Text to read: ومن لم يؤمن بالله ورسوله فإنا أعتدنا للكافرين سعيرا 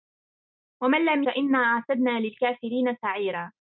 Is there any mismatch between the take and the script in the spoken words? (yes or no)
yes